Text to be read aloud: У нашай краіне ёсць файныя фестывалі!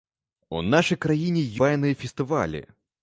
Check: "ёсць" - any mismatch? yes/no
yes